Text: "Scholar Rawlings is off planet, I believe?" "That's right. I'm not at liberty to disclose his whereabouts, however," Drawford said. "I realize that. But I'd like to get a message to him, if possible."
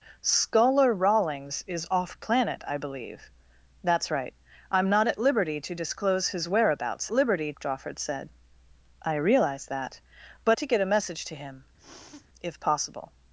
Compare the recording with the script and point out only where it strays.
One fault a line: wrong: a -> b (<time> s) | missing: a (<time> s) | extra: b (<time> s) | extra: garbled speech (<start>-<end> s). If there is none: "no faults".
wrong: however -> liberty (7.1 s)
missing: I'd like (10.6 s)